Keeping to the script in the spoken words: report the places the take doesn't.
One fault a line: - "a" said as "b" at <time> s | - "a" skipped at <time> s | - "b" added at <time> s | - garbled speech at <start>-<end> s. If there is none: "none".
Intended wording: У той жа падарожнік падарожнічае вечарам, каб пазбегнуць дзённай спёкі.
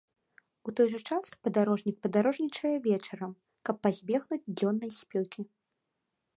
- "час" added at 1.1 s